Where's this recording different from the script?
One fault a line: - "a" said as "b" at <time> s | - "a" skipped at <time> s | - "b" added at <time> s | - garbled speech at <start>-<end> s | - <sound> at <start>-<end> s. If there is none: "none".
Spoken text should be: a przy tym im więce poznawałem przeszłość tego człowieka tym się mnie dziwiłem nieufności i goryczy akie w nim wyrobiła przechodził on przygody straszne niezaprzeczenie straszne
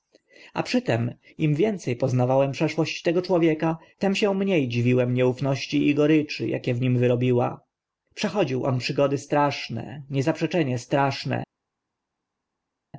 none